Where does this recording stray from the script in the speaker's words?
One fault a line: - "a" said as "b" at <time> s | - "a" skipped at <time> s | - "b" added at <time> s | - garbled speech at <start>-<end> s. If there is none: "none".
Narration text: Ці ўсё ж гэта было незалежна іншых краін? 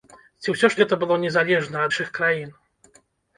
none